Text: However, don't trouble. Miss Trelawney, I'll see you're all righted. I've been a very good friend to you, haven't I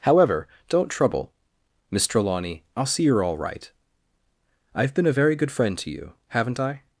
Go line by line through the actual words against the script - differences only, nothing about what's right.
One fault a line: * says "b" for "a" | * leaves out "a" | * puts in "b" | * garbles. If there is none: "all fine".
* says "right" for "righted"